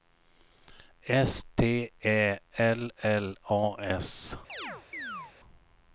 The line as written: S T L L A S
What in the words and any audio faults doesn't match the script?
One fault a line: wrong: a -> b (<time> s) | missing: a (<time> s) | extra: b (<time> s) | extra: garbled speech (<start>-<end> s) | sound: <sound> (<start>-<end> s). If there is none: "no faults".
extra: Ä (2.1 s)
sound: chirp (4.5-5.3 s)